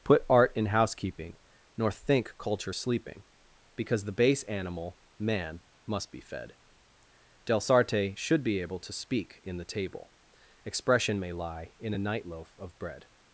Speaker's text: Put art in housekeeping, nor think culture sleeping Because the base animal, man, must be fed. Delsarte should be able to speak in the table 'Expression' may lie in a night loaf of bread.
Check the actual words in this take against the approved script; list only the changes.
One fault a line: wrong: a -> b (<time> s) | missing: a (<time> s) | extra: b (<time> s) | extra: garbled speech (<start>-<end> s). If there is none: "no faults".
no faults